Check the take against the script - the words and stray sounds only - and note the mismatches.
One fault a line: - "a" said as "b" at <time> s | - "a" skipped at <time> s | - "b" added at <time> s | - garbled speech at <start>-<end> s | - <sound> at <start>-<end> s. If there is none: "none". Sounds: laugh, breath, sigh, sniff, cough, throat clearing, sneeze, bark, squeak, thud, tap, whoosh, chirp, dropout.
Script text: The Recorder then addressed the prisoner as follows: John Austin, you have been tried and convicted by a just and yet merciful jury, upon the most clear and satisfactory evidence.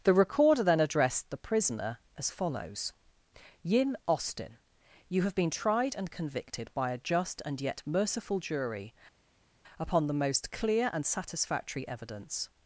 - "John" said as "Yin" at 3.6 s